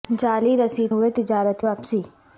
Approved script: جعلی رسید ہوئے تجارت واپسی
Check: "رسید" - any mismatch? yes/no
no